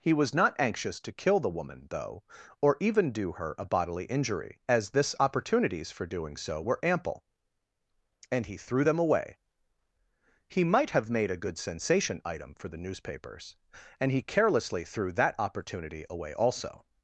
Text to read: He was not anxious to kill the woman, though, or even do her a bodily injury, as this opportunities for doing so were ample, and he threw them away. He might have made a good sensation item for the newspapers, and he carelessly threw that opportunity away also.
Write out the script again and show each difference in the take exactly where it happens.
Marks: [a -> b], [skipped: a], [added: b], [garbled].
He was not anxious to kill the woman, though, or even do her a bodily injury, as this opportunities for doing so were ample, and he threw them away. He might have made a good sensation item for the newspapers, and he carelessly threw that opportunity away also.